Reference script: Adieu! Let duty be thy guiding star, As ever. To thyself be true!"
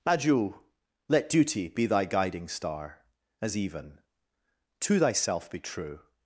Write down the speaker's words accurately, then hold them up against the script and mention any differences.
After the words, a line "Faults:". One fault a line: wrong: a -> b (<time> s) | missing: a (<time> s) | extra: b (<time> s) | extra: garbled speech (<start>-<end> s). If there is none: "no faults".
Adieu! Let duty be thy guiding star, As even. To thyself be true!"
Faults:
wrong: ever -> even (3.5 s)